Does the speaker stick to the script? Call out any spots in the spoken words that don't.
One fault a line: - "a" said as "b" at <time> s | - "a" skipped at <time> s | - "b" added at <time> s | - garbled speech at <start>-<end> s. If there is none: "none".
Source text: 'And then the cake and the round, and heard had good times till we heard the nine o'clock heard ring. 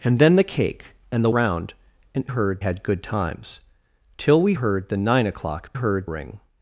none